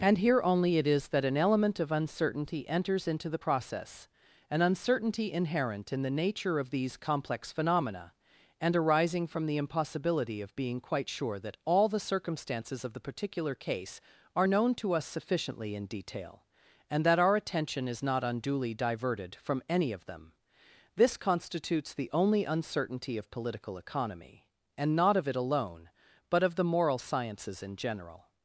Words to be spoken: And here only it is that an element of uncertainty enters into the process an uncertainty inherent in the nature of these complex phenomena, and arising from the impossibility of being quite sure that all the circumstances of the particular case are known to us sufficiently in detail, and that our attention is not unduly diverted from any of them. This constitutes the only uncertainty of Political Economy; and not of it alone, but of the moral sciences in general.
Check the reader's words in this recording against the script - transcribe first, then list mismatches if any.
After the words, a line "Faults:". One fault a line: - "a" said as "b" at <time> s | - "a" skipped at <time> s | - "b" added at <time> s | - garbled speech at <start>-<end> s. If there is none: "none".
And here only it is that an element of uncertainty enters into the process an uncertainty inherent in the nature of these complex phenomena, and arising from the impossibility of being quite sure that all the circumstances of the particular case are known to us sufficiently in detail, and that our attention is not unduly diverted from any of them. This constitutes the only uncertainty of Political Economy; and not of it alone, but of the moral sciences in general.
Faults:
none